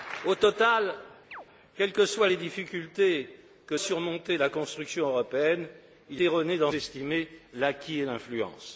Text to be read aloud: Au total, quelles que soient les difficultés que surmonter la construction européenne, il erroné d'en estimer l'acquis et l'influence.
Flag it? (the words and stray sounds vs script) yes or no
yes